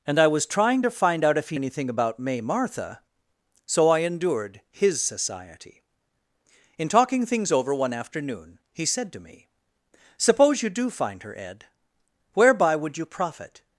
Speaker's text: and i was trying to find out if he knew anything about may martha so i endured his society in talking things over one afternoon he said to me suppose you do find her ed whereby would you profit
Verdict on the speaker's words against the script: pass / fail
fail